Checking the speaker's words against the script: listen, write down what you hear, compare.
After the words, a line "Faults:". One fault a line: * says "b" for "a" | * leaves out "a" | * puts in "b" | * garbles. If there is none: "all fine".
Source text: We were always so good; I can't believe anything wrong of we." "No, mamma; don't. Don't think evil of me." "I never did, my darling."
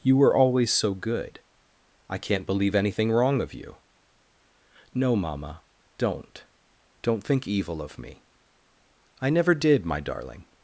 You were always so good; I can't believe anything wrong of you." "No, mamma; don't. Don't think evil of me." "I never did, my darling."
Faults:
* says "You" for "We"
* says "you" for "we"